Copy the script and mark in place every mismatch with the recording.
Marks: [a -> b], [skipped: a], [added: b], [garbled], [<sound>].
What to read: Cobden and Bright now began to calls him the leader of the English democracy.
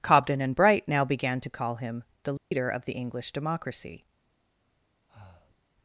Cobden and Bright now began to [calls -> call] him the leader [dropout] of the English democracy. [breath]